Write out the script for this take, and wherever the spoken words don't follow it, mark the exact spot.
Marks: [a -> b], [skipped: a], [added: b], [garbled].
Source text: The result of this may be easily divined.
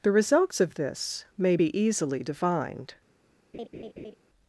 The [result -> results] of this may be easily divined.